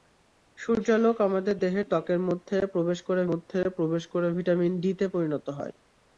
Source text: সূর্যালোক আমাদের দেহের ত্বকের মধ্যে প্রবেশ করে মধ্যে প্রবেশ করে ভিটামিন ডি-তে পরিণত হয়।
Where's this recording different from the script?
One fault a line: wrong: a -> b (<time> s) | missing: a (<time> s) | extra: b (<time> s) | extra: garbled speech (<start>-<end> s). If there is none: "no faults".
no faults